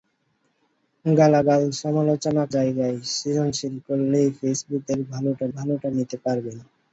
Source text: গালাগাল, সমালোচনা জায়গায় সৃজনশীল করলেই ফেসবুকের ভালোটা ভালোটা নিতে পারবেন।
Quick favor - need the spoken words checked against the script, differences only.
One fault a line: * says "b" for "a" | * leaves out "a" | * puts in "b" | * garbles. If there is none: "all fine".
all fine